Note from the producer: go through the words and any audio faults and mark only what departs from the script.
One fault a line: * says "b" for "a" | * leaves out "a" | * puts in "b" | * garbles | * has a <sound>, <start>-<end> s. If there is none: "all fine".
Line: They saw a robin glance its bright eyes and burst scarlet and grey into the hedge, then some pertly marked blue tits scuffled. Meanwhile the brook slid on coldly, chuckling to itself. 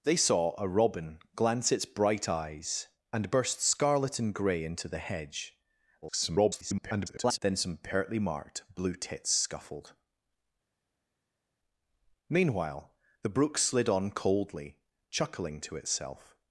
* garbles